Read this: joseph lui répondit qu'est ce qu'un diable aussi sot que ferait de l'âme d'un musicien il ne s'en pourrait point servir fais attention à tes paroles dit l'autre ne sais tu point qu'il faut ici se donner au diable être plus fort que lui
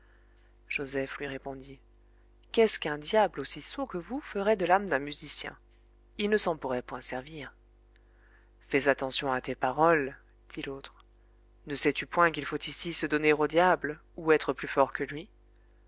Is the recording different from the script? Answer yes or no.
yes